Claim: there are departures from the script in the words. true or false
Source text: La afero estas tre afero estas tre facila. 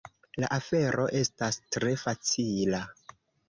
true